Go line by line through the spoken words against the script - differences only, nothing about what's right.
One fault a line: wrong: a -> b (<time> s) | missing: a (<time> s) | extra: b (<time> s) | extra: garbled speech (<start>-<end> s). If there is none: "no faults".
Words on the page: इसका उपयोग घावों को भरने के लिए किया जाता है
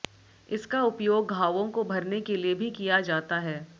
extra: भी (2.5 s)